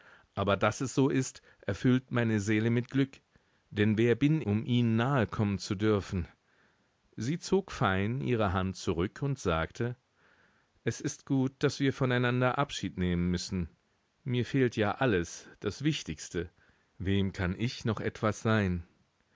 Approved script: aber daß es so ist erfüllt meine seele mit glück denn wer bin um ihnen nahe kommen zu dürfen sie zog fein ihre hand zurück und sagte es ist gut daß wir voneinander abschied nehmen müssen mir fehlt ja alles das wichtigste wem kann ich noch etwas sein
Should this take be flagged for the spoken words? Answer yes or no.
no